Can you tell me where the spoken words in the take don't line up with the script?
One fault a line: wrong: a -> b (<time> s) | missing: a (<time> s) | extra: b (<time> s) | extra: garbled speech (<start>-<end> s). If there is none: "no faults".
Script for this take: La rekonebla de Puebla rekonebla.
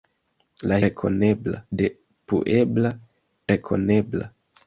no faults